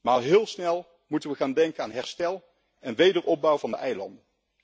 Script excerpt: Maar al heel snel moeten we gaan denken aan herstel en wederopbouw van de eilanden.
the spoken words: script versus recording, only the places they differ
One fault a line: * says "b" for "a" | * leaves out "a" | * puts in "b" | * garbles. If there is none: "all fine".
all fine